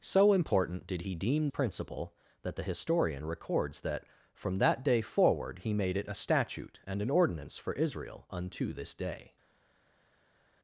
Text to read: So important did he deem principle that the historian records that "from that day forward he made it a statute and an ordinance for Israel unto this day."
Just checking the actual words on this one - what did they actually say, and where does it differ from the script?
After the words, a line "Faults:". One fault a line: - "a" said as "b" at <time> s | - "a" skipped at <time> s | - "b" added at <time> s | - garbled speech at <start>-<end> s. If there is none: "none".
So important did he deem principle that the historian records that "from that day forward he made it a statute and an ordinance for Israel unto this day."
Faults:
none